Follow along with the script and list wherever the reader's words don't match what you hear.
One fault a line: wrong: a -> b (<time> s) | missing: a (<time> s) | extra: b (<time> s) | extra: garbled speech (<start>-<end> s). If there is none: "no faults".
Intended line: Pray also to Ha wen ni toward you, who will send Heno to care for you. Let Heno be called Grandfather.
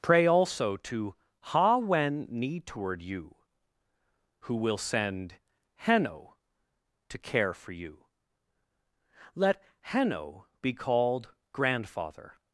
no faults